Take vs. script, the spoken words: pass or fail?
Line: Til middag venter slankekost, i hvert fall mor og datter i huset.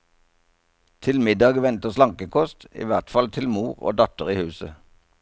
fail